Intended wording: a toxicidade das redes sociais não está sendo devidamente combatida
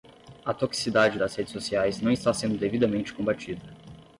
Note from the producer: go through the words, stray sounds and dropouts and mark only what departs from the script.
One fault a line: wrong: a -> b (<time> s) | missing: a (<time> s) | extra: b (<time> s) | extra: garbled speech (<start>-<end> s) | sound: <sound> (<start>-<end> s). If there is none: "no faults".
no faults